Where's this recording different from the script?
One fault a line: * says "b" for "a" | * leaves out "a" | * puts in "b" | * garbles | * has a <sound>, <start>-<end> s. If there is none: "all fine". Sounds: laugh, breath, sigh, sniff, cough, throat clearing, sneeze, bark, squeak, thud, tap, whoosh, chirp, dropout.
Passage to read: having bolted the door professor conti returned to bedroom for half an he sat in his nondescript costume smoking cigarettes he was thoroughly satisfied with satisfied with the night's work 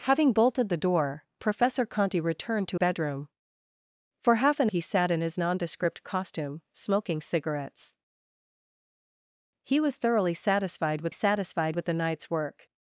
all fine